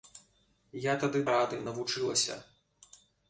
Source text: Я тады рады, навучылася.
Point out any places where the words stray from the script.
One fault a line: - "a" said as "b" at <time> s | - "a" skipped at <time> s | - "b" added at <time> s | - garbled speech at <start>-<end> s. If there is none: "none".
none